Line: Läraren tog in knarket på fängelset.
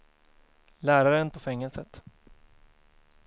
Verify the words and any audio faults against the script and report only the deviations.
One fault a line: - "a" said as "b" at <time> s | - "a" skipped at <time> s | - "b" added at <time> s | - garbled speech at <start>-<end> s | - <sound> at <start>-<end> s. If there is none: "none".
- "tog in knarket" skipped at 1.3 s